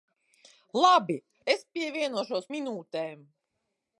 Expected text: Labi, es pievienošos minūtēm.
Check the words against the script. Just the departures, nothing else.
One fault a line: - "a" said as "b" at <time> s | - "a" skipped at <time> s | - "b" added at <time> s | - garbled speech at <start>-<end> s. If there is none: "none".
none